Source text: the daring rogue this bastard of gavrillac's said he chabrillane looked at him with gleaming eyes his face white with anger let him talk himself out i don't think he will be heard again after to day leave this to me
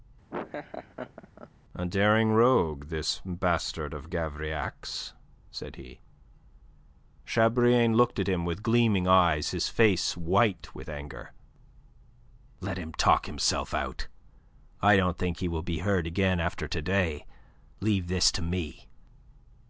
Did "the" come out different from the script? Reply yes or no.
yes